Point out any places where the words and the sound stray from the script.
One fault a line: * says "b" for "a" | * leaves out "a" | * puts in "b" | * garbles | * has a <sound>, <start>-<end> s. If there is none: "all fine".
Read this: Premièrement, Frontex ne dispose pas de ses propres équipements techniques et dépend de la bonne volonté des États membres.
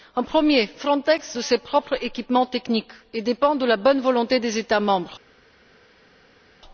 * leaves out "ne dispose pas"